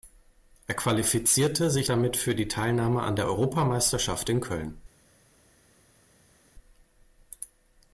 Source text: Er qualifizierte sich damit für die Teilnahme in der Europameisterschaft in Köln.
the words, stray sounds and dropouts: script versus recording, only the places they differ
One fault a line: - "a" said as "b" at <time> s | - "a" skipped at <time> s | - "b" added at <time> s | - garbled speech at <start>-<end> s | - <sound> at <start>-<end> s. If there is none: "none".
- "in" said as "an" at 3.0 s